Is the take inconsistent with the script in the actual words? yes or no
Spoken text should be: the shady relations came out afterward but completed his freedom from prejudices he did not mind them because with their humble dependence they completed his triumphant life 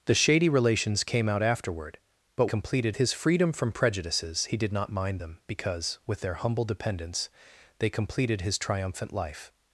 no